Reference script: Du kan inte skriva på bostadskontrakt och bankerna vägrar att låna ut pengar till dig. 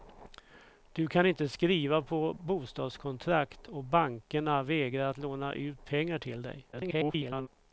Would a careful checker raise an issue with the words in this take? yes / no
yes